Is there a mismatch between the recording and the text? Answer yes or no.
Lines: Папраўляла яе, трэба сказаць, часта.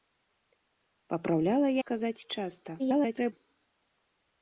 yes